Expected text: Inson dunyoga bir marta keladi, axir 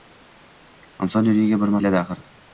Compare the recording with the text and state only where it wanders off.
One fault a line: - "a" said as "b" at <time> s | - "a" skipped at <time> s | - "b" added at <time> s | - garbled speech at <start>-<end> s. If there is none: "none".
- "marta" skipped at 1.8 s